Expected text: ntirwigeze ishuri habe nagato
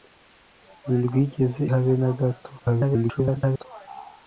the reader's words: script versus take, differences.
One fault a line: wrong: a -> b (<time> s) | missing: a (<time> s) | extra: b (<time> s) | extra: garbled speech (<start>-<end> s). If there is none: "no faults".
missing: ishuri (1.6 s)
extra: garbled speech (2.6-3.6 s)